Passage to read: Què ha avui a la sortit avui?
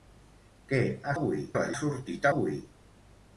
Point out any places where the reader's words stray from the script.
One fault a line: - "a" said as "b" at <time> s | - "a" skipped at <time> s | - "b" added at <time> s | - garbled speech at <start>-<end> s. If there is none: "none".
none